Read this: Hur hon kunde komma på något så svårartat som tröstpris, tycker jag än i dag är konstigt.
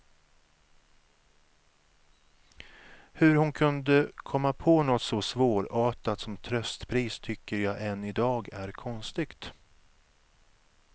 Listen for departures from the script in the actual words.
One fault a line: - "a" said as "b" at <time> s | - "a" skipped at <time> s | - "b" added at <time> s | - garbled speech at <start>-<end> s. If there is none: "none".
none